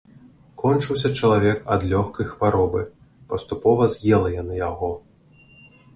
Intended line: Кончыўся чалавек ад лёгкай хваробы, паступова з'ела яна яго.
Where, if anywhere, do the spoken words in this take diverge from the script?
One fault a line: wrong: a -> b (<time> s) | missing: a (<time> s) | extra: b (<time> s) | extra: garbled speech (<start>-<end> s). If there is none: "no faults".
no faults